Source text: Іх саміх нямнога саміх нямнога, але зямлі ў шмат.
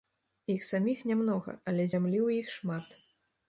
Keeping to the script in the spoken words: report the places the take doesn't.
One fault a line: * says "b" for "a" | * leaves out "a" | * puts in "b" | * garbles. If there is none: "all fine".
* leaves out "саміх нямнога"
* puts in "іх"